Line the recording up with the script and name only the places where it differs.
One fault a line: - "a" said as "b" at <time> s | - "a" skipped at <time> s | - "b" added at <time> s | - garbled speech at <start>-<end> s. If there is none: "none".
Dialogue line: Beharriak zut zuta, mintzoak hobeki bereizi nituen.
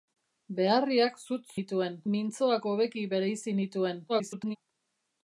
- "zuta" said as "nituen" at 1.6 s
- garbled speech at 4.1-4.6 s